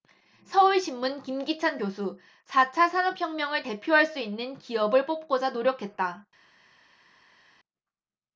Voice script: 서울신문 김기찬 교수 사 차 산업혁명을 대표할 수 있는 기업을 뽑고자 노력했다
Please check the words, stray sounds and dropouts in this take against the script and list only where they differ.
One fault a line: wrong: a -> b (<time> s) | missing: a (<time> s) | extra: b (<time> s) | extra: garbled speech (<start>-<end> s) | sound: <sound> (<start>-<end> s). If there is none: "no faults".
no faults